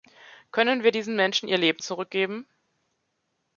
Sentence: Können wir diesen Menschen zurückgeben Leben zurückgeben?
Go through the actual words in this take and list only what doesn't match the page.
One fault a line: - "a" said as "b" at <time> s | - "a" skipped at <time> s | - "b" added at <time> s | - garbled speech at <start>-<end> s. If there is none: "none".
- "zurückgeben" said as "ihr" at 1.5 s